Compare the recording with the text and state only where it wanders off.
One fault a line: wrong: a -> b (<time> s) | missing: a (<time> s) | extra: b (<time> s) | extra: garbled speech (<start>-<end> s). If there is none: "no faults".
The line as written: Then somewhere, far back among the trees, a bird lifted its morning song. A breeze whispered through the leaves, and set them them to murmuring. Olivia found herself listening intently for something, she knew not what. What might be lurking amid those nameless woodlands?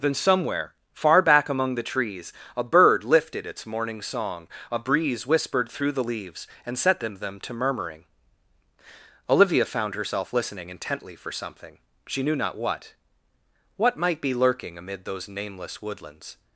no faults